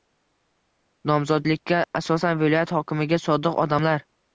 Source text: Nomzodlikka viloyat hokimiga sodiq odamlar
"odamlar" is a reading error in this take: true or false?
false